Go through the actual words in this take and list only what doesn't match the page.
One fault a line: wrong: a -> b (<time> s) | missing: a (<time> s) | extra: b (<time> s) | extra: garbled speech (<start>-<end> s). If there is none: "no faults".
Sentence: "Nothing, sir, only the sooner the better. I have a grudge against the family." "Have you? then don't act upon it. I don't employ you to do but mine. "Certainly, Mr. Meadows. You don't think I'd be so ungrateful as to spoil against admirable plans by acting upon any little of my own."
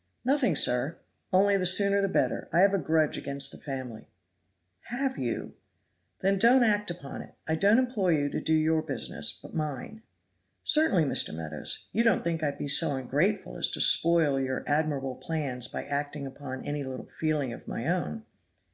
extra: your business (8.6 s)
wrong: against -> your (14.4 s)
extra: feeling (17.1 s)